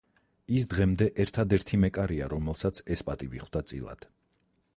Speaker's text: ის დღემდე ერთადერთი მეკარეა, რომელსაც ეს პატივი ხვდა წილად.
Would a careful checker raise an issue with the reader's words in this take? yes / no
no